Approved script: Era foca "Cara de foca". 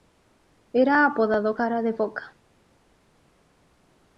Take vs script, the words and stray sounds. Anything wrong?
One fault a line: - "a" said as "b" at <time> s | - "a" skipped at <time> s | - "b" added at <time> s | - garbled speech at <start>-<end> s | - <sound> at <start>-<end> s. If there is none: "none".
- "foca" said as "apodado" at 1.1 s